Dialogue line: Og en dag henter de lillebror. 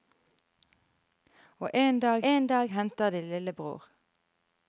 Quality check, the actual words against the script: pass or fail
fail